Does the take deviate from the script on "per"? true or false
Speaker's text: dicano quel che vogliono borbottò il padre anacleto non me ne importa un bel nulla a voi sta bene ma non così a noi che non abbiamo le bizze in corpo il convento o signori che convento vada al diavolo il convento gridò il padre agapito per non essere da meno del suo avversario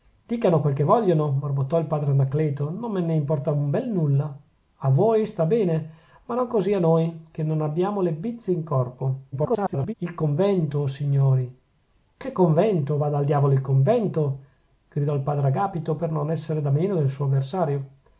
false